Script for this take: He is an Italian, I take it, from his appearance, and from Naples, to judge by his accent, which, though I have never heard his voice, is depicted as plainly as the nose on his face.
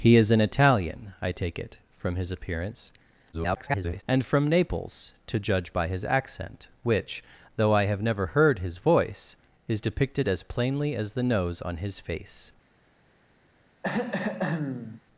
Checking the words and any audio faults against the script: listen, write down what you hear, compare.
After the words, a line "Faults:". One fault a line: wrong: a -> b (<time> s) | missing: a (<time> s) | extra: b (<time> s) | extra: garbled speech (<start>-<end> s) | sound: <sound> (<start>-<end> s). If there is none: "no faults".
He is an Italian, I take it, from his appearance, [garbled] and from Naples, to judge by his accent, which, though I have never heard his voice, is depicted as plainly as the nose on his face.
Faults:
extra: garbled speech (3.3-4.0 s)
sound: throat clearing (13.8-15.0 s)